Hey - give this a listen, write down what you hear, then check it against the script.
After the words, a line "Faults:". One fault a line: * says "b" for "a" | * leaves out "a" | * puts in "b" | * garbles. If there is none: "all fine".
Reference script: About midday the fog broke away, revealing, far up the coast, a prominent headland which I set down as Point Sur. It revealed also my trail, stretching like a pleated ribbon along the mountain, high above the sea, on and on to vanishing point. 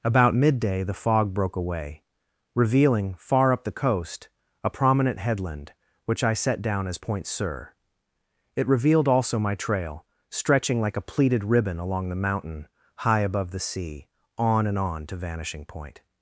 About midday the fog broke away, revealing, far up the coast, a prominent headland which I set down as Point Sur. It revealed also my trail, stretching like a pleated ribbon along the mountain, high above the sea, on and on to vanishing point.
Faults:
all fine